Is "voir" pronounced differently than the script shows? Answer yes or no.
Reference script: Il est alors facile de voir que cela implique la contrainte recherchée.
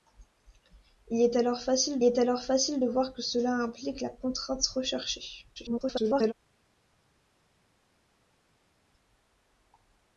no